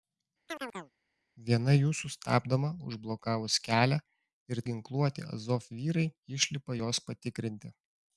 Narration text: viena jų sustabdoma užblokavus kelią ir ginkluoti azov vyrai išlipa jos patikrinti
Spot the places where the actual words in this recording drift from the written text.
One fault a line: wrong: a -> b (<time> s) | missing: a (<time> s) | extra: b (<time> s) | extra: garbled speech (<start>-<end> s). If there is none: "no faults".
no faults